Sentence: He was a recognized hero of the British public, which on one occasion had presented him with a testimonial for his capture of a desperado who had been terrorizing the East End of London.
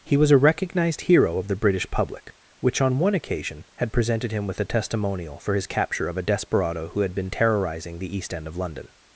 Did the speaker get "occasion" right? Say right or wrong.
right